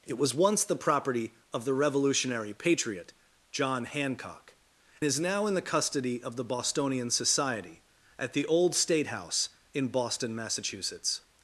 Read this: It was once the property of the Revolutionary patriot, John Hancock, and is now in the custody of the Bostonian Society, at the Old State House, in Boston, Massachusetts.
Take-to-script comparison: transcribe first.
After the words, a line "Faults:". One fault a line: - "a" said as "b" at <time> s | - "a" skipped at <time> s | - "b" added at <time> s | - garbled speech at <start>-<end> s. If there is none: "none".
It was once the property of the Revolutionary patriot, John Hancock, is now in the custody of the Bostonian Society, at the Old State House, in Boston, Massachusetts.
Faults:
- "and" skipped at 4.5 s